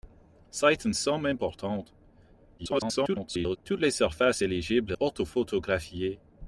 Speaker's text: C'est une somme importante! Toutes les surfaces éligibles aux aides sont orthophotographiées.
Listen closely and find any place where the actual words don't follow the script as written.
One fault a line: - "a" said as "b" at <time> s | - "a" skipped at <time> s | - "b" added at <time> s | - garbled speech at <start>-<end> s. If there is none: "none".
- garbled speech at 2.6-3.6 s
- "aux aides sont" skipped at 4.9 s